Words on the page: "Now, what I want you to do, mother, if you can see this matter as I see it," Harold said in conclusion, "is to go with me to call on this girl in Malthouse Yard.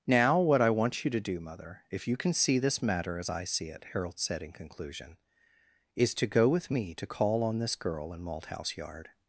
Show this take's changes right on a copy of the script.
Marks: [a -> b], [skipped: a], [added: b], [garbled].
"Now, what I want you to do, mother, if you can see this matter as I see it," Harold said in conclusion, "is to go with me to call on this girl in Malthouse Yard.